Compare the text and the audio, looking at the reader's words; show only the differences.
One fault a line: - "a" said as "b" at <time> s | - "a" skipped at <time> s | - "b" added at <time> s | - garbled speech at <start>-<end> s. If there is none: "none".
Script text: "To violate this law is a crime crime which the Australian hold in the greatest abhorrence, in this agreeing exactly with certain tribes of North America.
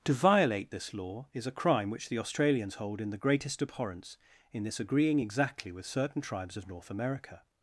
- "crime" skipped at 1.9 s
- "Australian" said as "Australians" at 2.2 s